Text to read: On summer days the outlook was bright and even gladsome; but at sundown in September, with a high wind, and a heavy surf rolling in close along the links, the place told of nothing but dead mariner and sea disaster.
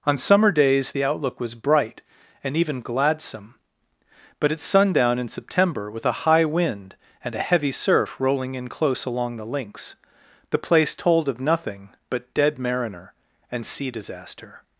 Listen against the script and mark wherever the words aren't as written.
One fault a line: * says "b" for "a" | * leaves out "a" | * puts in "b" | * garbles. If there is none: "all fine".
all fine